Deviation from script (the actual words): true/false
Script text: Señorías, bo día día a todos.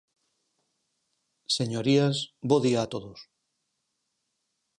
true